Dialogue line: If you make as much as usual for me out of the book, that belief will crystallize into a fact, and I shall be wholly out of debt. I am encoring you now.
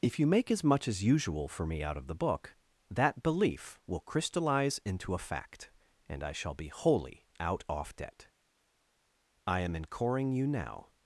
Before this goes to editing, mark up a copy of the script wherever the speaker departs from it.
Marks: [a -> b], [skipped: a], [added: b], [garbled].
If you make as much as usual for me out of the book, that belief will crystallize into a fact, and I shall be wholly out [of -> off] debt. I am encoring you now.